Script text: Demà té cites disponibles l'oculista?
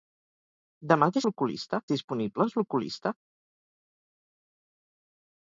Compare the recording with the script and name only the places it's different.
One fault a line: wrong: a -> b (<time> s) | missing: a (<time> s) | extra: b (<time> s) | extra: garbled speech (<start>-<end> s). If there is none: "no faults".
wrong: cites -> l'oculista (1.3 s)